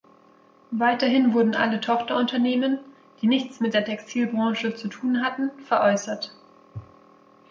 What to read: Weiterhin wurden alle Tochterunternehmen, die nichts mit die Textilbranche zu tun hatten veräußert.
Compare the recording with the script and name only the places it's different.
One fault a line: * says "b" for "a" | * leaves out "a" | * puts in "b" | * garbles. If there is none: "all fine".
* says "der" for "die"